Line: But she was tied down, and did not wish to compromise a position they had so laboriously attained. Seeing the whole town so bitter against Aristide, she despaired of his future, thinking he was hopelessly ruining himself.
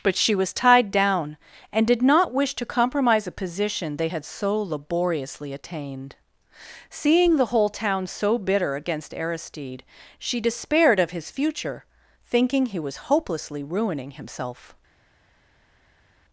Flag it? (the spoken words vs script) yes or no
no